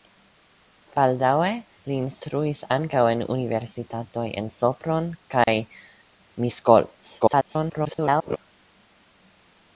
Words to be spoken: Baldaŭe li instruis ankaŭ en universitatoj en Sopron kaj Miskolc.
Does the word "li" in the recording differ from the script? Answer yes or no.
no